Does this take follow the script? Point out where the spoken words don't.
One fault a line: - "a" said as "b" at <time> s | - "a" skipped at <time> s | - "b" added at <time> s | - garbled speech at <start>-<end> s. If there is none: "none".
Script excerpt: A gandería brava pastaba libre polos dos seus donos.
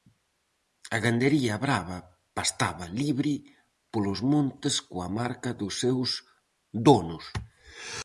- "montes coa marca" added at 4.3 s